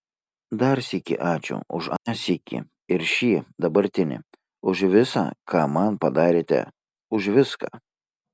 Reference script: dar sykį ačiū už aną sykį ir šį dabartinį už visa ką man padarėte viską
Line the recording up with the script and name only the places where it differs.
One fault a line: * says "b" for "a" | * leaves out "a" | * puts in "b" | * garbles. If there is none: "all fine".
* puts in "už"